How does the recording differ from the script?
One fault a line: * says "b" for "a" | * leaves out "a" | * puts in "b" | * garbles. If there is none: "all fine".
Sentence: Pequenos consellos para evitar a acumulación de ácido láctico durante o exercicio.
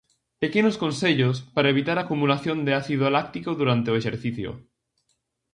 all fine